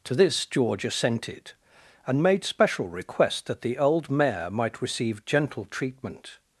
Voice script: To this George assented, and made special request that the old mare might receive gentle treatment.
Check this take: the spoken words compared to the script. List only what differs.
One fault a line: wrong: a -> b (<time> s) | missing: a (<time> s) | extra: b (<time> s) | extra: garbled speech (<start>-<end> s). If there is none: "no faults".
no faults